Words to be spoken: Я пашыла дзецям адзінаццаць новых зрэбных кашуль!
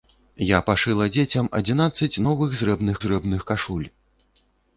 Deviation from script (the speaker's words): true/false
true